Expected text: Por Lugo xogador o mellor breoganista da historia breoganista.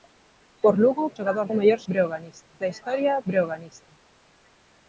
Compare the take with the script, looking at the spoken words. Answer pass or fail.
pass